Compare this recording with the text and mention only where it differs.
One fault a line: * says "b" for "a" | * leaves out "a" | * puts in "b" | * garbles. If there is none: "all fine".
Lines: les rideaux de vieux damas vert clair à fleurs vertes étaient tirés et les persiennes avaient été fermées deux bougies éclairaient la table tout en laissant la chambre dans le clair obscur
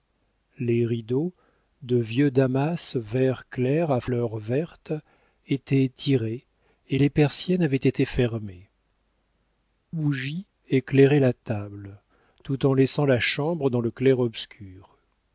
* leaves out "deux"